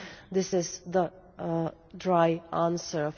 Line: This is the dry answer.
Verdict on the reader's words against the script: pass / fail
pass